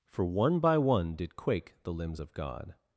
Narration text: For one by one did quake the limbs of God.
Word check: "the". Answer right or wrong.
right